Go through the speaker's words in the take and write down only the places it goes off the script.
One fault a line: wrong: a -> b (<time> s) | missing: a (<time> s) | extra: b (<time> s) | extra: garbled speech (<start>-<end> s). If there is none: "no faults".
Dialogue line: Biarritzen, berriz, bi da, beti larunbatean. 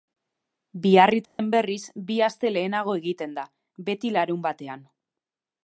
extra: aste lehenago egiten (2.3 s)